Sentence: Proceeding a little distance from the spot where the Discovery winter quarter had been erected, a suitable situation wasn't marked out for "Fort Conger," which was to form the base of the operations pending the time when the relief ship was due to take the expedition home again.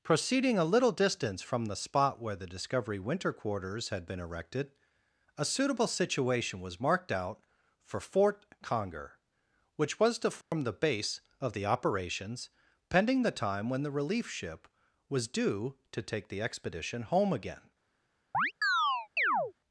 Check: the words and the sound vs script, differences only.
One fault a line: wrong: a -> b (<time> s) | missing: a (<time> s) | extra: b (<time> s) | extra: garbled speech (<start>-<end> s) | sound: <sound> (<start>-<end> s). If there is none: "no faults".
wrong: quarter -> quarters (3.3 s)
wrong: wasn't -> was (6.6 s)
sound: dropout (10.4-10.5 s)
sound: chirp (18.3-19.5 s)